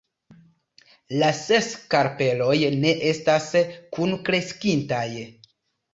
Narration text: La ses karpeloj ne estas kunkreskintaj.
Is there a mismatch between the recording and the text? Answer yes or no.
no